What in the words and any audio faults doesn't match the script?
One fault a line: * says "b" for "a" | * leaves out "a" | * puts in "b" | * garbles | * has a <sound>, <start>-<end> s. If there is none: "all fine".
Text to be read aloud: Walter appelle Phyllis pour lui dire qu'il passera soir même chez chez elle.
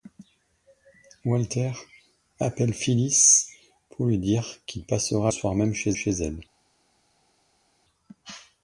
all fine